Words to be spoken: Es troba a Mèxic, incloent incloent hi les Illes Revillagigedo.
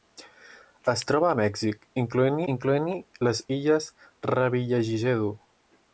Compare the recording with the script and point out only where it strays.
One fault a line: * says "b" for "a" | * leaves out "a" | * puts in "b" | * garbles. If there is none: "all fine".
all fine